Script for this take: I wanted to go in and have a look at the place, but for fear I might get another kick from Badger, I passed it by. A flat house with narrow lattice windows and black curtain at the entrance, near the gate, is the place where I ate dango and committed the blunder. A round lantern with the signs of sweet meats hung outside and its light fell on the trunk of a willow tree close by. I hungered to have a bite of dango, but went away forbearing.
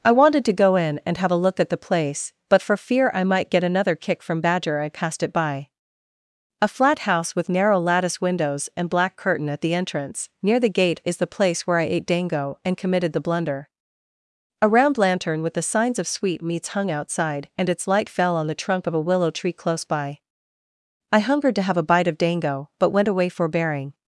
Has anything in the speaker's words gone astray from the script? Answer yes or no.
no